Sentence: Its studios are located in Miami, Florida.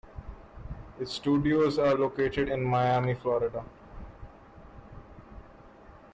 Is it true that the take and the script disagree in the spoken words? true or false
false